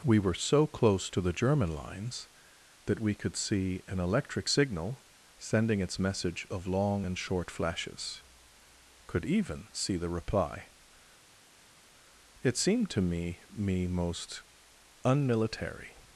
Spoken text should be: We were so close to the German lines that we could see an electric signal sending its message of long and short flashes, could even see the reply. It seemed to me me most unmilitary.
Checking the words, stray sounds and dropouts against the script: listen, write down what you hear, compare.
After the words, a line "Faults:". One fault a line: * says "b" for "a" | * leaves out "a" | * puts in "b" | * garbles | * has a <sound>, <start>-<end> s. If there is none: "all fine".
We were so close to the German lines that we could see an electric signal sending its message of long and short flashes, could even see the reply. It seemed to me me most unmilitary.
Faults:
all fine